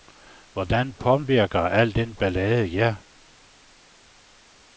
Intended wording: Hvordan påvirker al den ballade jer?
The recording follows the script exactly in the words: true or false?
true